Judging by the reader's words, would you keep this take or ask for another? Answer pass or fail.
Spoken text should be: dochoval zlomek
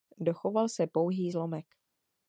fail